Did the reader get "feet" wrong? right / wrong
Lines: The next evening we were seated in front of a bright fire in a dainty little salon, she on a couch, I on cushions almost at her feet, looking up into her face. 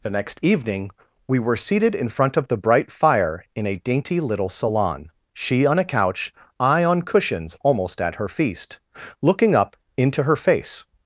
wrong